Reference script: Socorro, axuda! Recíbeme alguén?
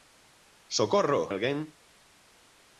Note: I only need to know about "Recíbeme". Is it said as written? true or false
false